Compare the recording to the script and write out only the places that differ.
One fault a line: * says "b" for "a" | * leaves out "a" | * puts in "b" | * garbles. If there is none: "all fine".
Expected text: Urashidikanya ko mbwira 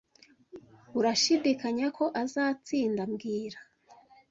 * puts in "azatsinda"